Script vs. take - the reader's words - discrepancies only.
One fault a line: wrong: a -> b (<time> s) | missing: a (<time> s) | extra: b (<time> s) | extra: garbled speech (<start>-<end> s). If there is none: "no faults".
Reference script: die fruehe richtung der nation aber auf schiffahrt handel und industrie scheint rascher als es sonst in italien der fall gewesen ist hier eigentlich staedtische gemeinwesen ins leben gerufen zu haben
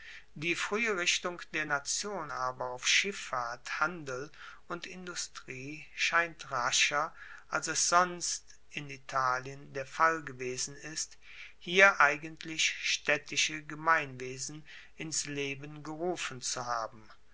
no faults